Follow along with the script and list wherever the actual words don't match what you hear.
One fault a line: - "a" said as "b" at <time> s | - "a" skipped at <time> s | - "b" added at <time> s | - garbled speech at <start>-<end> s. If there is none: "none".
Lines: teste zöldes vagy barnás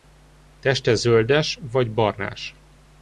none